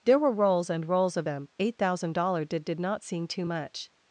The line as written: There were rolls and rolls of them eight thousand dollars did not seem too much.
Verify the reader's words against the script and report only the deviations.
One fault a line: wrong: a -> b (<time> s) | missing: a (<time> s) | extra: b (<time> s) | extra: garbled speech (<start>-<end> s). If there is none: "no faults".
extra: did (2.6 s)